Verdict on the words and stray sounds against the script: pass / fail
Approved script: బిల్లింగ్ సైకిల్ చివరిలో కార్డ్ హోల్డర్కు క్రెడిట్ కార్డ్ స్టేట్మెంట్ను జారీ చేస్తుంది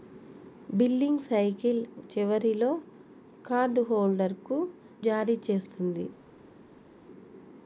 fail